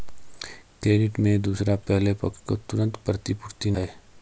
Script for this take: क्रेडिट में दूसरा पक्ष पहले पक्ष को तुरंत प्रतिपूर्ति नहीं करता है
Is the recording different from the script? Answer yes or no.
yes